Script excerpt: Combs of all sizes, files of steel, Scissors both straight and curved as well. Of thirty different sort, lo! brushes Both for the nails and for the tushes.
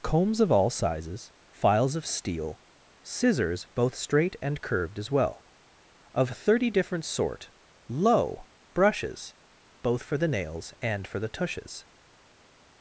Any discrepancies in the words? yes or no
no